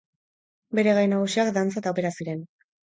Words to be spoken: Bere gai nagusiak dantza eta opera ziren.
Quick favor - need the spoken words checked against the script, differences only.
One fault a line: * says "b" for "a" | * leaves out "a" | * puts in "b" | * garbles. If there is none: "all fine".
all fine